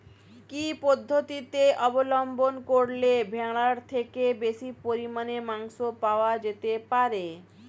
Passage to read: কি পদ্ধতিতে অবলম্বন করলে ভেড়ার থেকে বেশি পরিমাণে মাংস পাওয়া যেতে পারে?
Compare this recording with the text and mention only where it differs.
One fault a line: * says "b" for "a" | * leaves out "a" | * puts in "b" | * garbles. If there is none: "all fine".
all fine